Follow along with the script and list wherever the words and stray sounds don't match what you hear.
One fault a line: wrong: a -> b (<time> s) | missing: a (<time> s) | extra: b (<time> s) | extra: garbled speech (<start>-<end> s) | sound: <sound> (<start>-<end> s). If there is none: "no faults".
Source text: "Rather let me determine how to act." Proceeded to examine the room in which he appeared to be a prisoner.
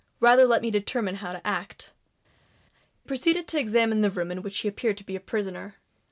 no faults